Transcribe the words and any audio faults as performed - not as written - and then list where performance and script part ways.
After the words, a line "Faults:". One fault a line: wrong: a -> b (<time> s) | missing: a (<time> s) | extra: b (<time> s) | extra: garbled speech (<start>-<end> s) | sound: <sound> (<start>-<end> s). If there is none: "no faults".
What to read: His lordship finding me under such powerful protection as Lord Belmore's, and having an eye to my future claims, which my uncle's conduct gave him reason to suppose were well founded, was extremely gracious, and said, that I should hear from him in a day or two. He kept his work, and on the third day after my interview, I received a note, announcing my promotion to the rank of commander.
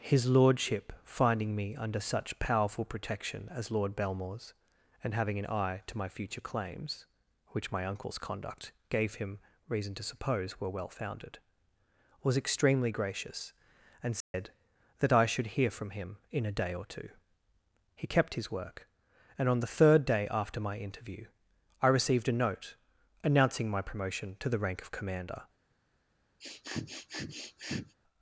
His lordship finding me under such powerful protection as Lord Belmore's, and having an eye to my future claims, which my uncle's conduct gave him reason to suppose were well founded, was extremely gracious, and said, that I should hear from him in a day or two. He kept his work, and on the third day after my interview, I received a note, announcing my promotion to the rank of commander.
Faults:
sound: dropout (14.2-14.3 s)
sound: sniff (26.4-28.0 s)